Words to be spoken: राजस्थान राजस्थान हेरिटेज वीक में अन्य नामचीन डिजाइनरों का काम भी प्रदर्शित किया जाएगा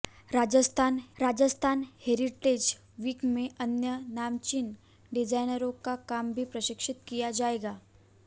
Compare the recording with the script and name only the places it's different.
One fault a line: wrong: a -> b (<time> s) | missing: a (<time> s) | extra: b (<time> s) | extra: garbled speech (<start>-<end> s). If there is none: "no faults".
no faults